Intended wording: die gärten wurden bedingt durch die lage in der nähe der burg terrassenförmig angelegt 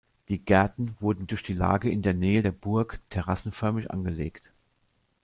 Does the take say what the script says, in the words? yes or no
no